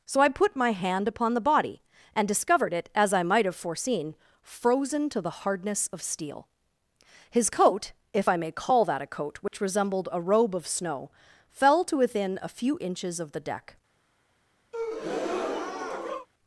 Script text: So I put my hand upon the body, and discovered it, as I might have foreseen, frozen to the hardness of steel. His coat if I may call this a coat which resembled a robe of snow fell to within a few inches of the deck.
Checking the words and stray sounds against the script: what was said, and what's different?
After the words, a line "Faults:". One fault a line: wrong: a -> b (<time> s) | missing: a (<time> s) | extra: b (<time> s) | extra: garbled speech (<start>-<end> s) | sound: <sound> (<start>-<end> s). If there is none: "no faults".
So I put my hand upon the body, and discovered it, as I might have foreseen, frozen to the hardness of steel. His coat if I may call that a coat which resembled a robe of snow fell to within a few inches of the deck.
Faults:
wrong: this -> that (8.8 s)
sound: dropout (9.5-9.5 s)
sound: breath (14.7-16.3 s)